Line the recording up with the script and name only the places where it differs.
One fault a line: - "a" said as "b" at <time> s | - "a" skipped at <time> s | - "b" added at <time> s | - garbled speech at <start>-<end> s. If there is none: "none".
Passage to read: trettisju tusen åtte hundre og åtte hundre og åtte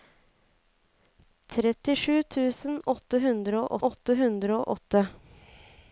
none